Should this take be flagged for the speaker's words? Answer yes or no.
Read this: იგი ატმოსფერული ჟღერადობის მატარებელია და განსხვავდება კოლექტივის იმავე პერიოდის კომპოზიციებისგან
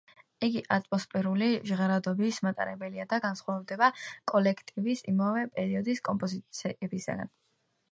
no